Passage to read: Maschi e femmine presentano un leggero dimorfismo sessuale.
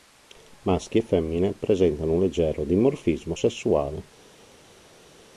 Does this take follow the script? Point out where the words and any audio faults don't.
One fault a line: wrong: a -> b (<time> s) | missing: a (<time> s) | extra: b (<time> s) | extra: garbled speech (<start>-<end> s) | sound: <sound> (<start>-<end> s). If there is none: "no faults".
no faults